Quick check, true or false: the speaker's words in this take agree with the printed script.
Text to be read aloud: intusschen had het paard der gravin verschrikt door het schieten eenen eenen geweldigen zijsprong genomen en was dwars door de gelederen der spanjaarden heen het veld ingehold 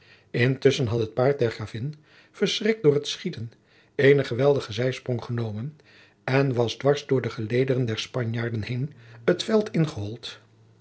false